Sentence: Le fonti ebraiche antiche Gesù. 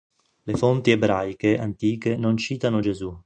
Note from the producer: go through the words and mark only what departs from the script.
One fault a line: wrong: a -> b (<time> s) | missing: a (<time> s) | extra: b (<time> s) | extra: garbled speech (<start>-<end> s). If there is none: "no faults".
extra: non citano (2.2 s)